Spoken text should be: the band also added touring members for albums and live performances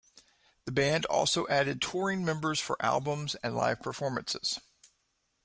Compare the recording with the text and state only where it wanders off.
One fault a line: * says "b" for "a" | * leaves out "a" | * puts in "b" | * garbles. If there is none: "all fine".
all fine